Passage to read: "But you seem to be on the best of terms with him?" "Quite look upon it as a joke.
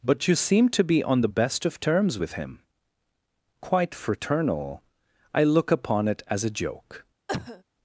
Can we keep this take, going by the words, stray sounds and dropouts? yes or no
no